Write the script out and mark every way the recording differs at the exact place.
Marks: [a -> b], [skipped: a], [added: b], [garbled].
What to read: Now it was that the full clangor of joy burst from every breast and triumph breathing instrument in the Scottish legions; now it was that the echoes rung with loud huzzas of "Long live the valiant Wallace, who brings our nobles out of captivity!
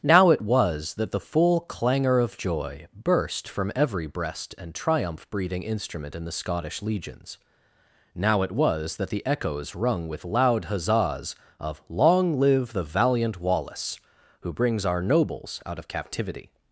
Now it was that the full clangor of joy burst from every breast and triumph breathing instrument in the Scottish legions; now it was that the echoes rung with loud huzzas of "Long live the valiant Wallace, who brings our nobles out of captivity!